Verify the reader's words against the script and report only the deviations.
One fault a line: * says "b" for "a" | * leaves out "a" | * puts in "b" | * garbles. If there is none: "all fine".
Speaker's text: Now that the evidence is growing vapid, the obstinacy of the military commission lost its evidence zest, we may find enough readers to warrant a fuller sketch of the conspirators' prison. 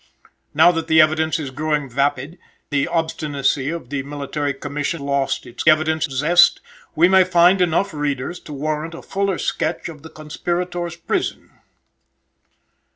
all fine